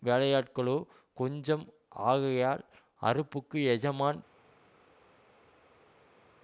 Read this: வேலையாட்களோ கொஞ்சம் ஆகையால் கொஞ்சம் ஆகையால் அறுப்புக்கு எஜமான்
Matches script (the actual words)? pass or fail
fail